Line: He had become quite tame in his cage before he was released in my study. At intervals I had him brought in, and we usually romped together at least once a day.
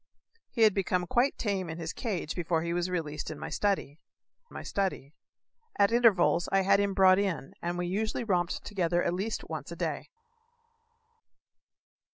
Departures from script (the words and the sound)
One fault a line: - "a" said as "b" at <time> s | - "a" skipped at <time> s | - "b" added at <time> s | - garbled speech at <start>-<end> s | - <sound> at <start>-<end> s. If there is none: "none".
- "my study" added at 4.5 s